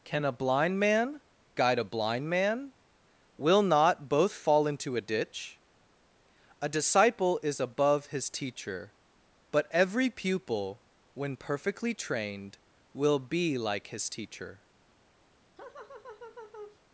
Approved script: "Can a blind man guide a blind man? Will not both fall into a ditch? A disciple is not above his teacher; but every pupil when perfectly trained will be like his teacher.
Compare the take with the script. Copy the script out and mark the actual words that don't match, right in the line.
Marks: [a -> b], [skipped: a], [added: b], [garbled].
"Can a blind man guide a blind man? Will not both fall into a ditch? A disciple is [skipped: not] above his teacher; but every pupil when perfectly trained will be like his teacher.